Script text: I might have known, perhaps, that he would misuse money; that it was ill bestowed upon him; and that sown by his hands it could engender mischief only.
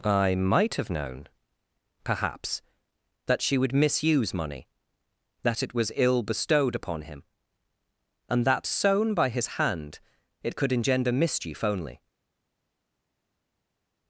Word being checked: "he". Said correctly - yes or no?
no